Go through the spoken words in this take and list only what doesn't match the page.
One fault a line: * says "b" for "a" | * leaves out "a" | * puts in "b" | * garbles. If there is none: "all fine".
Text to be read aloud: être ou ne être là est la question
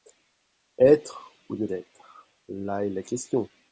all fine